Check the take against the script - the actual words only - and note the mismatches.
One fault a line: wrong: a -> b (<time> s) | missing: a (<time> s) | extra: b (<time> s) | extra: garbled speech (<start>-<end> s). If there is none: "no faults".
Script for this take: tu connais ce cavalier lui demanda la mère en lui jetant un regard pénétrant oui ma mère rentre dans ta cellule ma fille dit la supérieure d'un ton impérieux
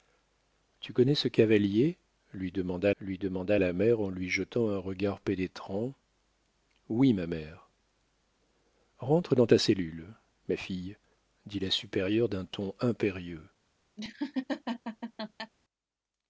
extra: lui demanda (3.0 s)